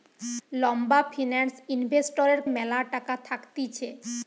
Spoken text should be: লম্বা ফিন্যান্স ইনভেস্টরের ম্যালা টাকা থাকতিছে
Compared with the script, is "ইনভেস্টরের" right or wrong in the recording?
right